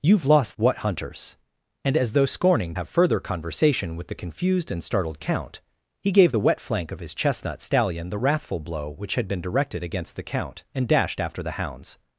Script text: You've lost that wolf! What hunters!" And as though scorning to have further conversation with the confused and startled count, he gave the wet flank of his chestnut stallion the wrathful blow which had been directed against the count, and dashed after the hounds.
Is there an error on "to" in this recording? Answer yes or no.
yes